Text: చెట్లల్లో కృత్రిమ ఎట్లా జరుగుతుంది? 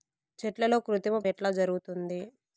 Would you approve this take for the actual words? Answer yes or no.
yes